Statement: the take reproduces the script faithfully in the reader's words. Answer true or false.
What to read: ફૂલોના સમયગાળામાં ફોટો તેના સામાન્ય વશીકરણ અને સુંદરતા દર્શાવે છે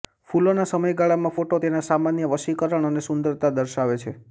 true